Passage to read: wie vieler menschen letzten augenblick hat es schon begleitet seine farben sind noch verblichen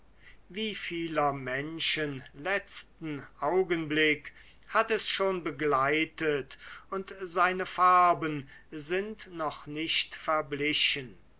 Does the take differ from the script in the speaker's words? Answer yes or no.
yes